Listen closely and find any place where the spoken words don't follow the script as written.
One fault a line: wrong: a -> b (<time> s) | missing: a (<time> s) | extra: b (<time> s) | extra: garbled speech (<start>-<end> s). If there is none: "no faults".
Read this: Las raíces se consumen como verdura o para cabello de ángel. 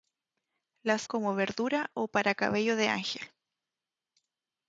missing: raíces se consumen (1.1 s)